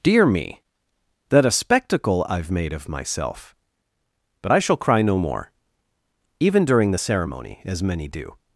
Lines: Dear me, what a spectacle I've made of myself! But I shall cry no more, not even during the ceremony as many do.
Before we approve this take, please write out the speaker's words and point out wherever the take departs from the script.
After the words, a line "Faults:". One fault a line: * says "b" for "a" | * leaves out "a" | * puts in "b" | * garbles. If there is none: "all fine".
Dear me, that a spectacle I've made of myself! But I shall cry no more, even during the ceremony as many do.
Faults:
* says "that" for "what"
* leaves out "not"